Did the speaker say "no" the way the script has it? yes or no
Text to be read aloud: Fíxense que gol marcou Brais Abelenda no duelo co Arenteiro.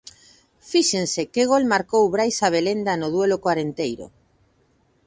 yes